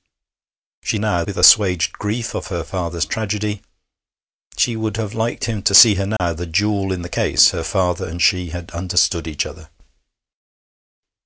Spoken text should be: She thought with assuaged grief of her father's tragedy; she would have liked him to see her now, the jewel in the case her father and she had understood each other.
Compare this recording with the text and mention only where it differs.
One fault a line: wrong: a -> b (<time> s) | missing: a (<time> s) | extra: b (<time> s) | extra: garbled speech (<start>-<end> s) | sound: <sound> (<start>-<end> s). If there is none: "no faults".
wrong: thought -> now (1.0 s)
sound: dropout (6.2-6.2 s)